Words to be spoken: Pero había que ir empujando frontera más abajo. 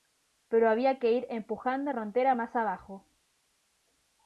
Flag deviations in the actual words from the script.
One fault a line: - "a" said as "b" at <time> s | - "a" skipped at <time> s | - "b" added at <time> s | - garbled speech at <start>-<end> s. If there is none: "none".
none